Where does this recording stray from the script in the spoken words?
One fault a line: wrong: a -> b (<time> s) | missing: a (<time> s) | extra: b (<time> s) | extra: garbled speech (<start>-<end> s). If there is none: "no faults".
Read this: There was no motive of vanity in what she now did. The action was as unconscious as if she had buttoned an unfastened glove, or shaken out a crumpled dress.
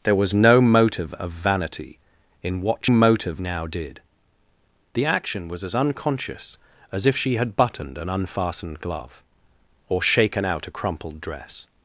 wrong: she -> motive (2.9 s)